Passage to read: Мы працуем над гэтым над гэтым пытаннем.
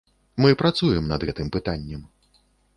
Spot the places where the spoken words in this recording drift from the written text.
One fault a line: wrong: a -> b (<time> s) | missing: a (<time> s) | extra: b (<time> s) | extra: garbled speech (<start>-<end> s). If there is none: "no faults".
missing: над гэтым (1.5 s)